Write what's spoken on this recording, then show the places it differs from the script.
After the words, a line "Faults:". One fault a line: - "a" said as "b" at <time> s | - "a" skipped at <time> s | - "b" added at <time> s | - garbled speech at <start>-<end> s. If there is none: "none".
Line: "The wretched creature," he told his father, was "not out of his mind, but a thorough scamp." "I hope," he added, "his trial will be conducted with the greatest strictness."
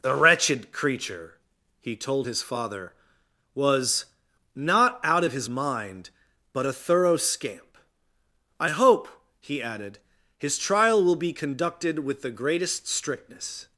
"The wretched creature," he told his father, was "not out of his mind, but a thorough scamp." "I hope," he added, "his trial will be conducted with the greatest strictness."
Faults:
none